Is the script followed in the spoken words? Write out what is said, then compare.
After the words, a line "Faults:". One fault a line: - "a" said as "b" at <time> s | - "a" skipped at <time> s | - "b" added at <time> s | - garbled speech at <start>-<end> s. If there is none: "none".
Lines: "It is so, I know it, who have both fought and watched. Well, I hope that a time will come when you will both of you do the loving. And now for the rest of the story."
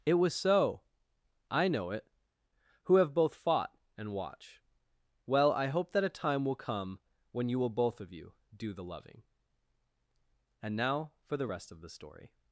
"It was so, I know it, who have both fought and watch. Well, I hope that a time will come when you will both of you do the loving. And now for the rest of the story."
Faults:
- "is" said as "was" at 0.1 s
- "watched" said as "watch" at 4.1 s